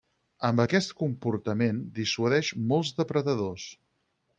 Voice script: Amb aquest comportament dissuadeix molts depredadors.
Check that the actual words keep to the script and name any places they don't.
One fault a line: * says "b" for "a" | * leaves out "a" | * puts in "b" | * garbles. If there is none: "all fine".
all fine